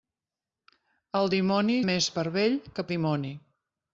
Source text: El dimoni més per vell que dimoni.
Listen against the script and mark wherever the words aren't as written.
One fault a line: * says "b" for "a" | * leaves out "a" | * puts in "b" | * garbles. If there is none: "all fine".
all fine